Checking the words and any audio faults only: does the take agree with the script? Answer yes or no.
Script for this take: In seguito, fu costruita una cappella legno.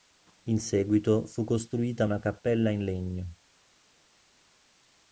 no